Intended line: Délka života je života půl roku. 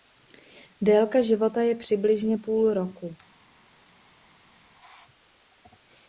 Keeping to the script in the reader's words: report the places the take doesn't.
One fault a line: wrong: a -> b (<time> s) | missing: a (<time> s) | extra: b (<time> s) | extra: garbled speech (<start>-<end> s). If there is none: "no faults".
wrong: života -> přibližně (1.8 s)